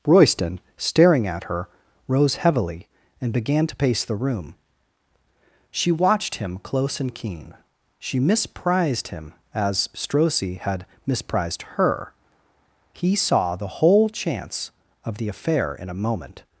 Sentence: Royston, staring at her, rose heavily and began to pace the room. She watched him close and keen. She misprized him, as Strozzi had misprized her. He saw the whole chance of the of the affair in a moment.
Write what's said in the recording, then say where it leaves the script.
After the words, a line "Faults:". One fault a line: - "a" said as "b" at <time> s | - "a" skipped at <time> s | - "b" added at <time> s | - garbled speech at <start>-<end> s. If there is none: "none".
Royston, staring at her, rose heavily and began to pace the room. She watched him close and keen. She misprized him, as Strozzi had misprized her. He saw the whole chance of the affair in a moment.
Faults:
- "of the" skipped at 15.3 s